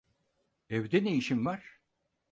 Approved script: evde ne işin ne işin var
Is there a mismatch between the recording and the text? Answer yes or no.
yes